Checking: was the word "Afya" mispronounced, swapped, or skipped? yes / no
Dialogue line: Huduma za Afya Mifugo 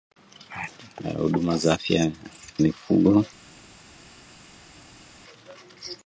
no